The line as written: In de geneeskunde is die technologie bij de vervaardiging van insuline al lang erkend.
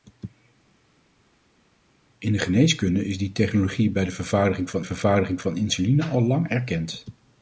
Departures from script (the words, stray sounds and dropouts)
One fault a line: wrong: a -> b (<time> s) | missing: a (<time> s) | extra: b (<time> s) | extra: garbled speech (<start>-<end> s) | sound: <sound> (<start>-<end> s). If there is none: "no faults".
extra: vervaardiging van (4.8 s)